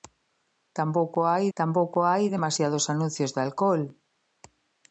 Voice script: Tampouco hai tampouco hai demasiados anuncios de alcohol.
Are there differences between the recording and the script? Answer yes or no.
no